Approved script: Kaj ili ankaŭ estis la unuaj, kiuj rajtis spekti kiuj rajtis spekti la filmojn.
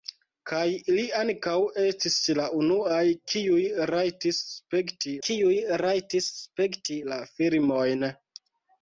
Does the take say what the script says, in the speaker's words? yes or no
yes